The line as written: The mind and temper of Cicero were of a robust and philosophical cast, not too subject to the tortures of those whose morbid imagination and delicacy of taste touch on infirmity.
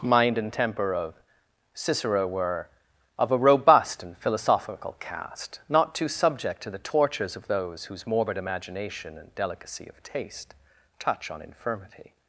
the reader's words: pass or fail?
fail